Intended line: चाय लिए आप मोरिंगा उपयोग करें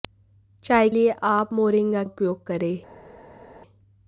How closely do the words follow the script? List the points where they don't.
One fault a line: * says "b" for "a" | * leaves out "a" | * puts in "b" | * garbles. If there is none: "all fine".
all fine